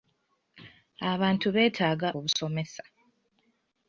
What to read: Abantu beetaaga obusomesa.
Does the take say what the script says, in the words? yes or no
yes